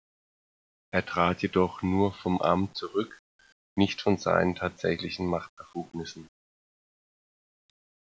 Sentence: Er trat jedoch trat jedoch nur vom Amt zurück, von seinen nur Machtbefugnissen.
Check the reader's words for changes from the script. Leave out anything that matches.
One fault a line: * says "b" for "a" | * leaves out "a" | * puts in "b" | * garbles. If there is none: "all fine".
* leaves out "trat jedoch"
* puts in "nicht"
* says "tatsächlichen" for "nur"